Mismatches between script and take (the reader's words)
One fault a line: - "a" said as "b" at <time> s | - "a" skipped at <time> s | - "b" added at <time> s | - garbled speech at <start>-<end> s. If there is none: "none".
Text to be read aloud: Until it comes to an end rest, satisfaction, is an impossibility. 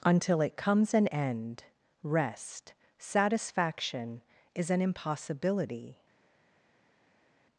- "to" skipped at 0.9 s